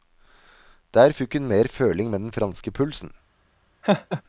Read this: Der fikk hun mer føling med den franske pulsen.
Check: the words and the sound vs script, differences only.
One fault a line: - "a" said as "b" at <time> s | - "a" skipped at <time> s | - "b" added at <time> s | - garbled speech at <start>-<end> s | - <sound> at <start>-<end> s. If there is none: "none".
- laugh at 3.8-4.2 s